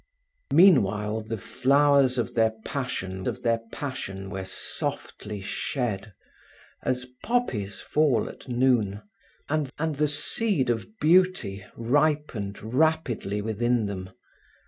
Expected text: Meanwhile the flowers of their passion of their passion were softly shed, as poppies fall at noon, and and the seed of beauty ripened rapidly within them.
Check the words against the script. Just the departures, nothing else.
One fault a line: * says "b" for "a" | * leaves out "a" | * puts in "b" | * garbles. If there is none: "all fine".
all fine